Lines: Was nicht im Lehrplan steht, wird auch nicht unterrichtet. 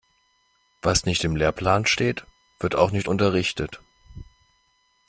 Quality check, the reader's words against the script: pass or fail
pass